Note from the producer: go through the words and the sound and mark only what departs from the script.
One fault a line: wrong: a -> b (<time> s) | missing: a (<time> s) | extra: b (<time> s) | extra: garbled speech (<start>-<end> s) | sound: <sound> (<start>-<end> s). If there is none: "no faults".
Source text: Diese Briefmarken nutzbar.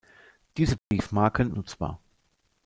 sound: dropout (0.8-0.9 s)